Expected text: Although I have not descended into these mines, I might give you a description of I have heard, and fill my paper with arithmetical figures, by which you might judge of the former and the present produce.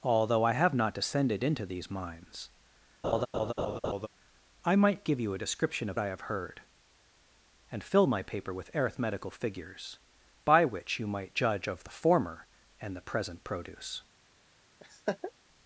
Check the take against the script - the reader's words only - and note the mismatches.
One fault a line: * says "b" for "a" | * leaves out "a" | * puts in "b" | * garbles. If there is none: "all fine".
all fine